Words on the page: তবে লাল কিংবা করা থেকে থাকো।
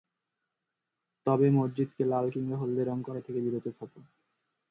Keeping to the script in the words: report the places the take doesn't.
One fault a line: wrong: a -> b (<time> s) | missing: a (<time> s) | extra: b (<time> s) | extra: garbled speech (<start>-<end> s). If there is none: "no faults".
extra: মসজিদকে (1.5 s)
extra: হলদে রং (2.6 s)
extra: বিরত (3.5 s)